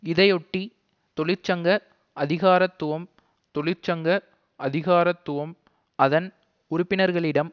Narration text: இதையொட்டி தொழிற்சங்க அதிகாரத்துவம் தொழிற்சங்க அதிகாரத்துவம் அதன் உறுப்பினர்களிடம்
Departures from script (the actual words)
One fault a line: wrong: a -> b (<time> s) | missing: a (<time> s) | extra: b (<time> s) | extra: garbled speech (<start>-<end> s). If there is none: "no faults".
no faults